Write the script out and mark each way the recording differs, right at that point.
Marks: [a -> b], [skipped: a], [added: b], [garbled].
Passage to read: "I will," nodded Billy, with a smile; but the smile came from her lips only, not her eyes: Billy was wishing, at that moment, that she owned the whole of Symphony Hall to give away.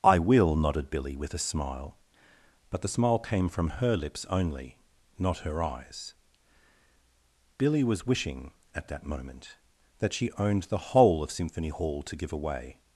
"I will," nodded Billy, with a smile; but the smile came from her lips only, not her eyes: Billy was wishing, at that moment, that she owned the whole of Symphony Hall to give away.